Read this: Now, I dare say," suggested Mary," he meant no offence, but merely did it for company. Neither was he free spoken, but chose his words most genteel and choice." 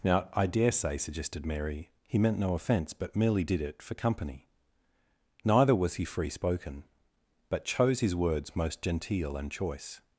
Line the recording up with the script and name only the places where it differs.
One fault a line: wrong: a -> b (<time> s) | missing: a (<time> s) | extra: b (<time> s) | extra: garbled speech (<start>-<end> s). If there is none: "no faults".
no faults